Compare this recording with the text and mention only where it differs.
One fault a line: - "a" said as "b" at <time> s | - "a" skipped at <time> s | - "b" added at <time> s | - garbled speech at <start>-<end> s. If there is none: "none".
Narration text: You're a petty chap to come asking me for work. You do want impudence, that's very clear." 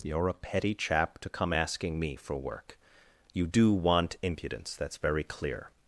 none